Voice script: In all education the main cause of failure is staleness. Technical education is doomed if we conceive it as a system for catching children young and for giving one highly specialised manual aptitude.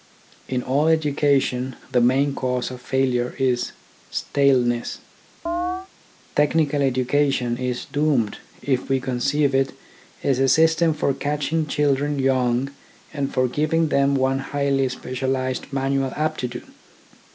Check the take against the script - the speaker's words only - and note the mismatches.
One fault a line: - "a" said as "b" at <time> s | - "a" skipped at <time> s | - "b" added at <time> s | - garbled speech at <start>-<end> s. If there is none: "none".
- "them" added at 13.9 s